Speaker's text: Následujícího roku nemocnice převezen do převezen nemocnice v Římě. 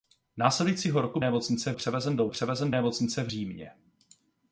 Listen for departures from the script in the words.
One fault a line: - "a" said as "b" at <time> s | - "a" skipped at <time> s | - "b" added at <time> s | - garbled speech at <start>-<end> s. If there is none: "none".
none